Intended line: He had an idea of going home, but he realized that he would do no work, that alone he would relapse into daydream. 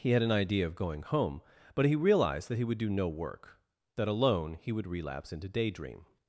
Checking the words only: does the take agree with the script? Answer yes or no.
yes